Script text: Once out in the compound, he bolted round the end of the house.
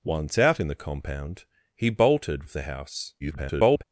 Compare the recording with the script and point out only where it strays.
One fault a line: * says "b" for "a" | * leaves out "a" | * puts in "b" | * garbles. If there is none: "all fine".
* leaves out "round the end"
* garbles